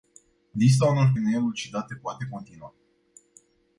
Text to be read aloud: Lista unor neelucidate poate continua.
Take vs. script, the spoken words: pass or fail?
pass